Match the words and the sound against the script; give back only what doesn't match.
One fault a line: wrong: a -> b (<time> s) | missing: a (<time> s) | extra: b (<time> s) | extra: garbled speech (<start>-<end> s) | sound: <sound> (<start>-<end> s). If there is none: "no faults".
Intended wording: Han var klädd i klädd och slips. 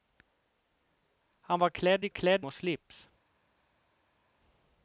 no faults